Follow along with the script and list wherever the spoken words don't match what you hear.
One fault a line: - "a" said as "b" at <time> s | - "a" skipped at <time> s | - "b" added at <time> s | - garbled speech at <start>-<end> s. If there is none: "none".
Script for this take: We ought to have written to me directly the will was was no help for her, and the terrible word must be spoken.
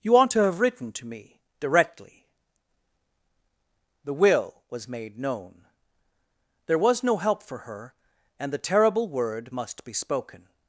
- "We" said as "You" at 0.0 s
- "made known There" added at 4.9 s